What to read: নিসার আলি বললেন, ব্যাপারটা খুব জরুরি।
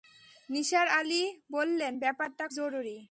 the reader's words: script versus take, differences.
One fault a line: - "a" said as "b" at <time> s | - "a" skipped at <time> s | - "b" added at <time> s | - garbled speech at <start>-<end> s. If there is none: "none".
- "খুব" skipped at 2.4 s